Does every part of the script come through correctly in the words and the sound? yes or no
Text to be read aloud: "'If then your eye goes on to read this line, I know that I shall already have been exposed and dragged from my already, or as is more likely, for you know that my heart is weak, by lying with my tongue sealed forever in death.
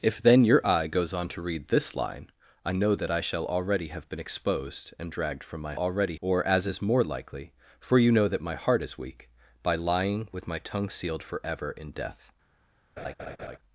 no